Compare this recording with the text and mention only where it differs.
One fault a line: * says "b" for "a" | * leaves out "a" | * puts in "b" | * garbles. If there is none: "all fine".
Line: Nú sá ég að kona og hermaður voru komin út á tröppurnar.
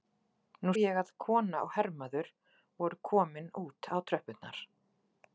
* leaves out "sá"